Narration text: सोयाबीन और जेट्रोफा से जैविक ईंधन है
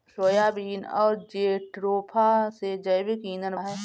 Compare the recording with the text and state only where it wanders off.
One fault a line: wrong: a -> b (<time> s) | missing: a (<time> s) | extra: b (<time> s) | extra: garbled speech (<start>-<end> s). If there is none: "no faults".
no faults